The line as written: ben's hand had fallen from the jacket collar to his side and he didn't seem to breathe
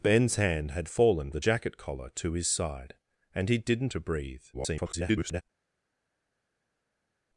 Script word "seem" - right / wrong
wrong